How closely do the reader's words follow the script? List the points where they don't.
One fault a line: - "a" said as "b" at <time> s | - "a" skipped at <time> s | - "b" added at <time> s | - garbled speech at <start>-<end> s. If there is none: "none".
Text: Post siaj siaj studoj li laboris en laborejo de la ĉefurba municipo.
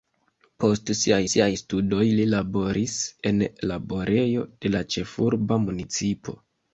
none